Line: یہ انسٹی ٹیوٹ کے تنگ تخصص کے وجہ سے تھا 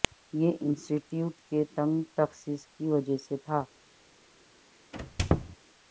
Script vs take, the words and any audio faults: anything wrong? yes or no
yes